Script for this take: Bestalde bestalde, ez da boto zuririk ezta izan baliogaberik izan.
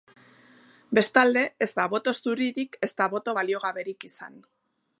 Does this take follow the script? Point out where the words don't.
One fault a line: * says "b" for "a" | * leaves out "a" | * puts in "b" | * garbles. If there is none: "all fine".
* leaves out "bestalde"
* says "boto" for "izan"